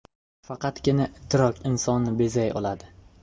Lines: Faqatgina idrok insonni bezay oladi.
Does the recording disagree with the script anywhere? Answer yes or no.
no